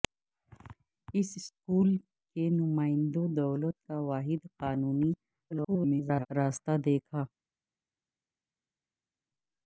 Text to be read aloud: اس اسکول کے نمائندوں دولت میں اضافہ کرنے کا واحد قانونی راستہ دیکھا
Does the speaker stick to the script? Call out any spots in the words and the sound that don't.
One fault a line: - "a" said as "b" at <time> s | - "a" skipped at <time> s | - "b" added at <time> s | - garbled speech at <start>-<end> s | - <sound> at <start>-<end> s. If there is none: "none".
- "میں اضافہ کرنے" skipped at 3.8 s
- garbled speech at 5.5-6.3 s